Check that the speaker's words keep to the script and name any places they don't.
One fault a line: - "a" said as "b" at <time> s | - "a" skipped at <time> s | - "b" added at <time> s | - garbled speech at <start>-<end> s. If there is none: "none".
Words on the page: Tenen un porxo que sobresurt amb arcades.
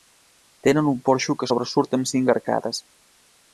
- "cinc" added at 2.1 s